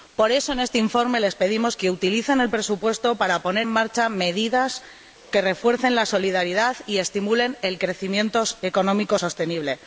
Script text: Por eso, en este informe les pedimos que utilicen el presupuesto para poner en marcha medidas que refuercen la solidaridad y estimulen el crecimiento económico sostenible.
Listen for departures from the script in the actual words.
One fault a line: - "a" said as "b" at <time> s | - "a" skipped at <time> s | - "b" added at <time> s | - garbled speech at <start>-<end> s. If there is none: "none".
- "en" skipped at 3.7 s